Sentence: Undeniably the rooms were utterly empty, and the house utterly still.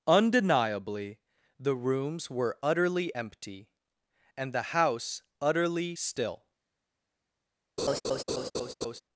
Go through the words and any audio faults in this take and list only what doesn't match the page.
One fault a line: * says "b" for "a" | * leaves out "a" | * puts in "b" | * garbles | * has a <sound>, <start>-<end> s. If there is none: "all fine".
* has a laugh, 7.8-9.0 s